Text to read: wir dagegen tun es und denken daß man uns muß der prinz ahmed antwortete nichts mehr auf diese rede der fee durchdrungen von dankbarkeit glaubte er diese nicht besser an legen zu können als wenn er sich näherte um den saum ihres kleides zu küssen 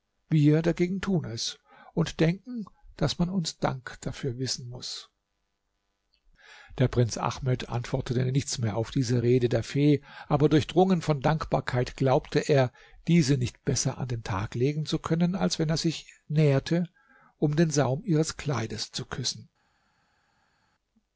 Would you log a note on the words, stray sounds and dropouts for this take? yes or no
yes